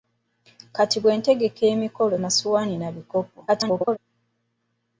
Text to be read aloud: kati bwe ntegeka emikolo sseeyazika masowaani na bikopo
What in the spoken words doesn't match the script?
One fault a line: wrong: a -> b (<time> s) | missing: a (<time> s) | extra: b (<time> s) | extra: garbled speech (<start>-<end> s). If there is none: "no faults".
missing: sseeyazika (2.2 s)
extra: garbled speech (3.5-4.0 s)